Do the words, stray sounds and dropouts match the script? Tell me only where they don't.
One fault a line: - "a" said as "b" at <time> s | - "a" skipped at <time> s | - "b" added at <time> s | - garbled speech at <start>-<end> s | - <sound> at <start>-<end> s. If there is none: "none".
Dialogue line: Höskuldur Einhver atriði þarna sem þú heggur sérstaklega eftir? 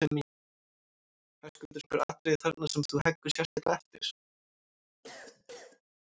- dropout at 3.5-3.6 s
- cough at 5.0-5.8 s